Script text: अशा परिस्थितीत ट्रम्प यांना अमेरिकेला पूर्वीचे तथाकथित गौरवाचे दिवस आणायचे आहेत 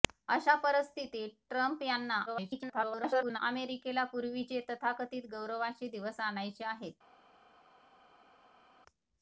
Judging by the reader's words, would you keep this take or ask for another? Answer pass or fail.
fail